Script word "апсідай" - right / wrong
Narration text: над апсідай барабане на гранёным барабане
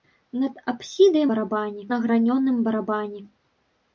right